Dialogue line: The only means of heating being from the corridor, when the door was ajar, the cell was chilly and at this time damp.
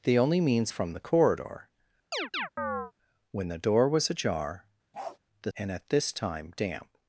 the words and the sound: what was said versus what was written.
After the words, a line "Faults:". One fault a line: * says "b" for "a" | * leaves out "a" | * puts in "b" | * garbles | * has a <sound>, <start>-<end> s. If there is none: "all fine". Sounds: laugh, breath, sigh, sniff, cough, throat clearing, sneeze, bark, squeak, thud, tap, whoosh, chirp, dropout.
The only means from the corridor, when the door was ajar, the and at this time damp.
Faults:
* leaves out "of heating being"
* has a chirp, 2.1-2.9 s
* has a bark, 4.9-5.2 s
* leaves out "cell was chilly"